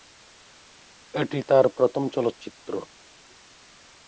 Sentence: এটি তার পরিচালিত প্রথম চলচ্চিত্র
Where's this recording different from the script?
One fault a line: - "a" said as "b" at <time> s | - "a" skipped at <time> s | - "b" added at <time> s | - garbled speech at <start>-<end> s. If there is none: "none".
- "পরিচালিত" skipped at 1.6 s